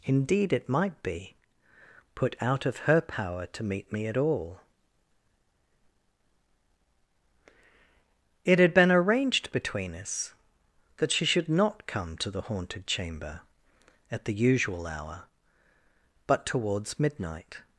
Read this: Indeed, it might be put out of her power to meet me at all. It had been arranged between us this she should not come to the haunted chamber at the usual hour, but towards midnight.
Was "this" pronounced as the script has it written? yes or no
no